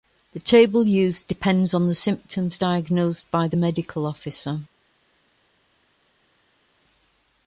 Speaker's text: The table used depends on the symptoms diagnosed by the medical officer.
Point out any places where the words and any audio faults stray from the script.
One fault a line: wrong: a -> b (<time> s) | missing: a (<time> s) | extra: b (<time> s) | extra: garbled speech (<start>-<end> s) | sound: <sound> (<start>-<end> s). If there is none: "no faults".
no faults